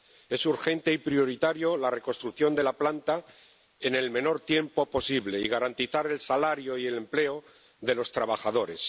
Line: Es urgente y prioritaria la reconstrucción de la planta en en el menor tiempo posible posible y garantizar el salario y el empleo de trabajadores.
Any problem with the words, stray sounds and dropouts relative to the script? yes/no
yes